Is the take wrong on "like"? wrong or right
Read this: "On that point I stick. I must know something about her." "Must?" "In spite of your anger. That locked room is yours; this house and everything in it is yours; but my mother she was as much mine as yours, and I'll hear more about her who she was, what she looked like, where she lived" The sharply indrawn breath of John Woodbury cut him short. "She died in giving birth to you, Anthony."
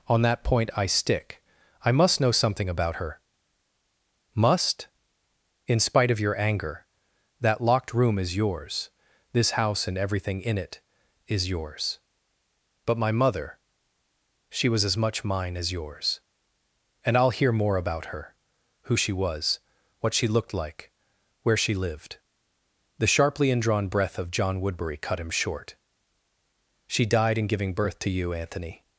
right